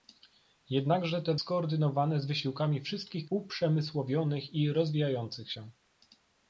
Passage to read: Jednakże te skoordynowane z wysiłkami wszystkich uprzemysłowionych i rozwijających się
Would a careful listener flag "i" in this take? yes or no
no